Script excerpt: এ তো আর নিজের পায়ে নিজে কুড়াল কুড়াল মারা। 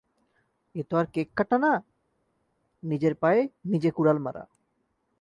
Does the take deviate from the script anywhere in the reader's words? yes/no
yes